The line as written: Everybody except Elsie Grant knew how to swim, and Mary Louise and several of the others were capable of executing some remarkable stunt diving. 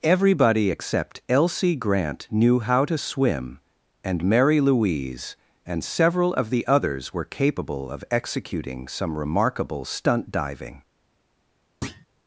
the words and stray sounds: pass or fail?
fail